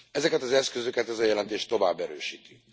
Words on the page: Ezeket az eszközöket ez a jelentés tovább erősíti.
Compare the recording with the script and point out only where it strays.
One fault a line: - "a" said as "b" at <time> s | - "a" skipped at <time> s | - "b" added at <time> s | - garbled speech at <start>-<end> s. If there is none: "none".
none